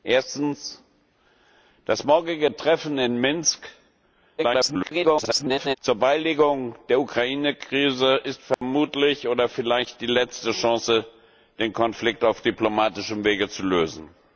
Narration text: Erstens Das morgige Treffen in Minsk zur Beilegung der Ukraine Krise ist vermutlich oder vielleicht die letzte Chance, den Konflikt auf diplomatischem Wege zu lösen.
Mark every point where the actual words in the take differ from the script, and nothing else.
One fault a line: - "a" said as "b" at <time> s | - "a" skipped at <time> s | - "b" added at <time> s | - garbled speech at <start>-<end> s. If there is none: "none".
- garbled speech at 4.4-5.8 s